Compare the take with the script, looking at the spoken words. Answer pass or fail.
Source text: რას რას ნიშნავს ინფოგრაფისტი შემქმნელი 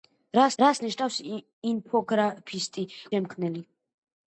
pass